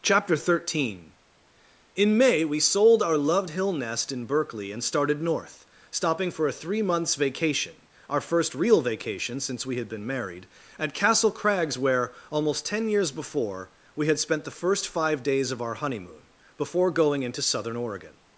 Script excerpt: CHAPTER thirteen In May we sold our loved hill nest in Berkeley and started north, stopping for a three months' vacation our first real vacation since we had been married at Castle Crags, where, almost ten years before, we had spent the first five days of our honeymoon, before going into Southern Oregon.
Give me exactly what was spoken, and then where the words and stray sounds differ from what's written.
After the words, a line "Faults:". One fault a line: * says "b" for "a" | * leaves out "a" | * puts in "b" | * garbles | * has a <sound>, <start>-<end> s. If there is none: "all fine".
CHAPTER thirteen In May we sold our loved hill nest in Berkeley and started north, stopping for a three months' vacation our first real vacation since we had been married at Castle Crags, where, almost ten years before, we had spent the first five days of our honeymoon, before going into Southern Oregon.
Faults:
all fine